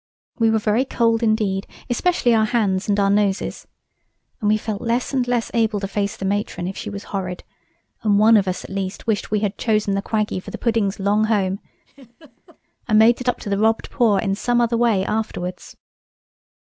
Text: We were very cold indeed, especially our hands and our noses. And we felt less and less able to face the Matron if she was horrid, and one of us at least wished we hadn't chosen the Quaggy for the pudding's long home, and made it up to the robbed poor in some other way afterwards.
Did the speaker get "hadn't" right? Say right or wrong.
wrong